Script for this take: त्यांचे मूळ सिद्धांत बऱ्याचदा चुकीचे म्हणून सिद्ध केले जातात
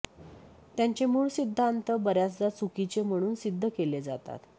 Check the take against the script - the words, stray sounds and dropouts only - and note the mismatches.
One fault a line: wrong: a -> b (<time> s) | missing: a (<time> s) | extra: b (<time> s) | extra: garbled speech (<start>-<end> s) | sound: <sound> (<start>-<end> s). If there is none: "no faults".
no faults